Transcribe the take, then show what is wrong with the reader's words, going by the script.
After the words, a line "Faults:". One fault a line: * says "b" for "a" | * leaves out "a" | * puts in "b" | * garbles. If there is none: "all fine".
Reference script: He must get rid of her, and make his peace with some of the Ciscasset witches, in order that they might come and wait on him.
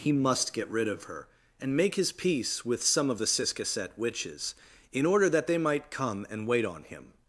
He must get rid of her, and make his peace with some of the Ciscasset witches, in order that they might come and wait on him.
Faults:
all fine